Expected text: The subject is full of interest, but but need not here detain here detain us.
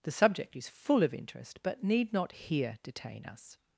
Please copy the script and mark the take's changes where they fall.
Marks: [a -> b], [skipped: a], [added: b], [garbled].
The subject is full of interest, but [skipped: but] need not here detain [skipped: here detain] us.